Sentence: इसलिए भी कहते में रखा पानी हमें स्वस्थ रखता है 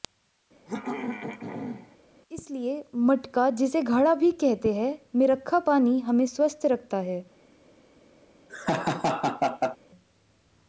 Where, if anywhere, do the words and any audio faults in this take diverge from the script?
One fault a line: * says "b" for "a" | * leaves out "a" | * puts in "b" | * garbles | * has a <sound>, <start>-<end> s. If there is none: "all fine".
* has a throat clearing, 0.7-2.0 s
* puts in "मटका जिसे घड़ा"
* puts in "हैं"
* has a laugh, 8.5-9.8 s